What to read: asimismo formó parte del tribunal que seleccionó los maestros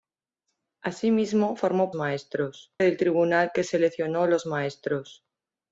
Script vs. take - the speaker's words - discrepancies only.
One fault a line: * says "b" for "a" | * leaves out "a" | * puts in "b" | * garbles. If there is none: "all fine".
* says "maestros" for "parte"